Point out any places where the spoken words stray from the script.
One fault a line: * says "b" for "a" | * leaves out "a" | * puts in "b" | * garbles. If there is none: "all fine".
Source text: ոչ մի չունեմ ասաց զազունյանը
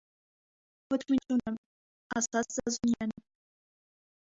all fine